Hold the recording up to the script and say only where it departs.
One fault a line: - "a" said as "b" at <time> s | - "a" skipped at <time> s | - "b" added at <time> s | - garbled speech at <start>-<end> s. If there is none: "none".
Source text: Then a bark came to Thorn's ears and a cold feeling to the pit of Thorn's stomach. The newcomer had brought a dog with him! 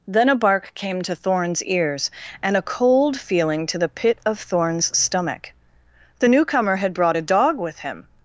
none